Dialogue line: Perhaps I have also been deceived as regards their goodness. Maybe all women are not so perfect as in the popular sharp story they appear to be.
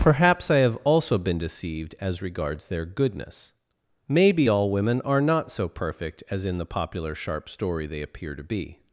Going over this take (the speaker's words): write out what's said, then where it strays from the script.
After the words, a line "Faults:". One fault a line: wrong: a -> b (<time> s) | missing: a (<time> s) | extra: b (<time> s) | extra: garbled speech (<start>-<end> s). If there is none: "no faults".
Perhaps I have also been deceived as regards their goodness. Maybe all women are not so perfect as in the popular sharp story they appear to be.
Faults:
no faults